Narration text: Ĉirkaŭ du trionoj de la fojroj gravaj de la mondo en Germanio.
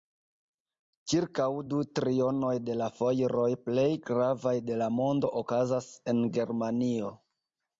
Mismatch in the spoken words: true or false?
true